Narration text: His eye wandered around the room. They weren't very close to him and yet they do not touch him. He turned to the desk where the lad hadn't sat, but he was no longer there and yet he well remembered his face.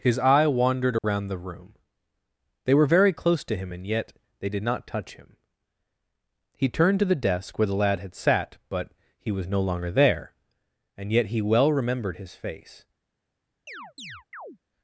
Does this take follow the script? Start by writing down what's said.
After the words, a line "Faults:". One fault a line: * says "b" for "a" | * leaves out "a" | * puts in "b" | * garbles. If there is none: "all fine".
His eye wandered around the room. They were very close to him and yet they did not touch him. He turned to the desk where the lad had sat, but he was no longer there and yet he well remembered his face.
Faults:
* says "were" for "weren't"
* says "did" for "do"
* says "had" for "hadn't"